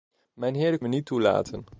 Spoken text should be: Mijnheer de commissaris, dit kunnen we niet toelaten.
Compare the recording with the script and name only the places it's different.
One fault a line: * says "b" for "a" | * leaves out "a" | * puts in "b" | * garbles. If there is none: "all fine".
* leaves out "commissaris dit kunnen"